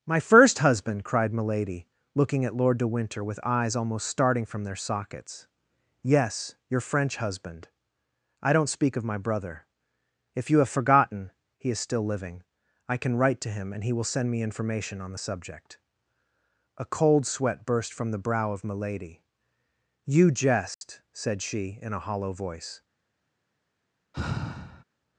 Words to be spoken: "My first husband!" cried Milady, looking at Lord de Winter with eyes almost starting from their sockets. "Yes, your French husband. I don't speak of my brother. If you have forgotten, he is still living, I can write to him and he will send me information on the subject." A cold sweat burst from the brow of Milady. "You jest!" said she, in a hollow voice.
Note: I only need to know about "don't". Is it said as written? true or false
true